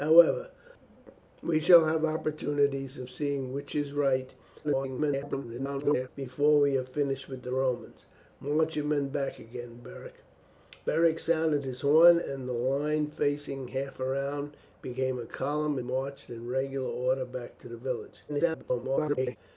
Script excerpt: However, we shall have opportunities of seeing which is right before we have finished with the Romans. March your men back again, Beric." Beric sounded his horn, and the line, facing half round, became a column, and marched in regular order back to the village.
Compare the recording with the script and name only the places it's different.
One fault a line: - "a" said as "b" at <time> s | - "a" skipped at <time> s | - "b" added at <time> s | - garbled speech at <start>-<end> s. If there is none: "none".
- garbled speech at 4.6-6.1 s
- "and" skipped at 15.8 s
- garbled speech at 18.3-19.4 s